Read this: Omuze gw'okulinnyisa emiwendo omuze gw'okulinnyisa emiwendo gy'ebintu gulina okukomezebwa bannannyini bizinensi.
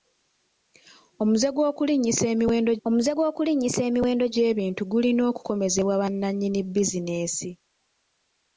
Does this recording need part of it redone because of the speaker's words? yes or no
no